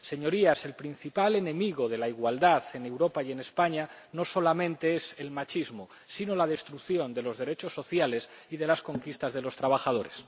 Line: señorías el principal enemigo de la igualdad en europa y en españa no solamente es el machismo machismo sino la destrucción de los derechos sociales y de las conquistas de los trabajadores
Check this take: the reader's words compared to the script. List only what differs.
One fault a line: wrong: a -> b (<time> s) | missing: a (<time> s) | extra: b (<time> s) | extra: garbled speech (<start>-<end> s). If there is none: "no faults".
missing: machismo (5.9 s)